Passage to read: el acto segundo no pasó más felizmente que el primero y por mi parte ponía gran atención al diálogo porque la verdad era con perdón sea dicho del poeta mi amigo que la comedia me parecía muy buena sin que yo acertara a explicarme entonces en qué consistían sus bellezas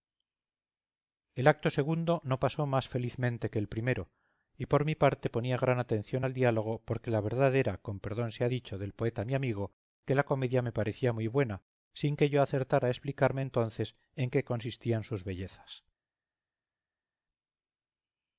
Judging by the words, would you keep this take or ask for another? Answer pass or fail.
pass